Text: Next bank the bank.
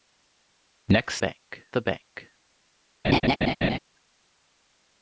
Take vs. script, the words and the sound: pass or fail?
fail